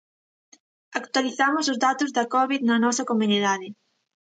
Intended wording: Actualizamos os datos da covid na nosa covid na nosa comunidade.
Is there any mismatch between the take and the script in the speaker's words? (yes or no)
yes